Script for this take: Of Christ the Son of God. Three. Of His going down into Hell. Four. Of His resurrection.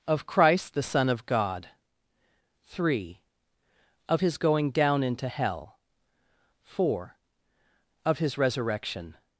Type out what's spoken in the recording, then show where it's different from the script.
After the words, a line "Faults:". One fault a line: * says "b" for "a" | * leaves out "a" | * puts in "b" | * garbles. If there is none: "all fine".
Of Christ the Son of God. Three. Of His going down into Hell. Four. Of His resurrection.
Faults:
all fine